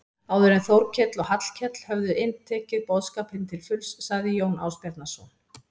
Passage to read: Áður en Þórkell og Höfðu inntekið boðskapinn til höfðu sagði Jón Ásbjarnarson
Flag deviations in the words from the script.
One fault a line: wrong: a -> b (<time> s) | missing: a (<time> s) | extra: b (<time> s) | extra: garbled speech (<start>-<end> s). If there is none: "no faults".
extra: Hallkell (1.3 s)
wrong: höfðu -> fulls (3.7 s)